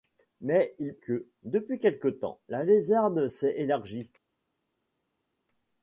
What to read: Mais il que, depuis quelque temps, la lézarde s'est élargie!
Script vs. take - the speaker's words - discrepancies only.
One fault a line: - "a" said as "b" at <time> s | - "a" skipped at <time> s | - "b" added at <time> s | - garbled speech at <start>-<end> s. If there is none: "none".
none